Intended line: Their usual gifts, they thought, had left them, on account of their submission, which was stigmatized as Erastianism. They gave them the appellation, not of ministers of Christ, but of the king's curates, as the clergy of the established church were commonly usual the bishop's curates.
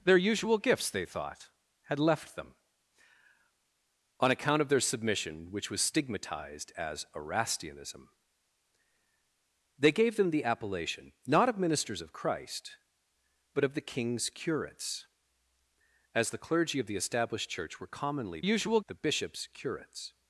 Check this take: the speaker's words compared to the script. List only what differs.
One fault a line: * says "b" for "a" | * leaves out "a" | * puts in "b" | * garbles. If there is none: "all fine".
all fine